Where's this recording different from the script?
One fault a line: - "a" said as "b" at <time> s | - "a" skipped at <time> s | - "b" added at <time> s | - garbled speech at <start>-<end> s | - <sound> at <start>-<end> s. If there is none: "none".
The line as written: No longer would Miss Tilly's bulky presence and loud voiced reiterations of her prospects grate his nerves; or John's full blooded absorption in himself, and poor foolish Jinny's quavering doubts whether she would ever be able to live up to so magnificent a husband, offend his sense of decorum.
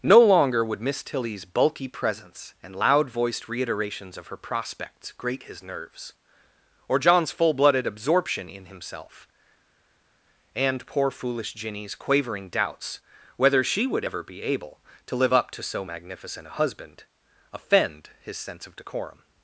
none